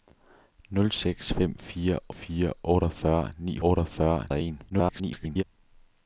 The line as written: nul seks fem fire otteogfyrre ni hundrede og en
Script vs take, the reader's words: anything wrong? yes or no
yes